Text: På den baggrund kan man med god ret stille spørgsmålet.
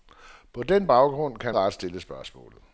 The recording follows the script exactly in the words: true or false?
false